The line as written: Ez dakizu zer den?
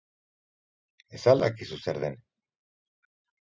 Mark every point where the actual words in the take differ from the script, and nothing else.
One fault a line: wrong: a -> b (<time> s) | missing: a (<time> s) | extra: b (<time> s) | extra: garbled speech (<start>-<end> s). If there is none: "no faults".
extra: al (1.3 s)